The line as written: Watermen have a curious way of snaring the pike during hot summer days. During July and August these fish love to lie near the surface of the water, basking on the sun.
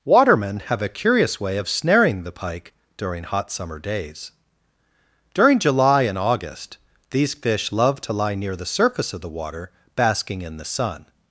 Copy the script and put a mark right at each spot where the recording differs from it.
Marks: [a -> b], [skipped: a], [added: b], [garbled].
Watermen have a curious way of snaring the pike during hot summer days. During July and August these fish love to lie near the surface of the water, basking [on -> in] the sun.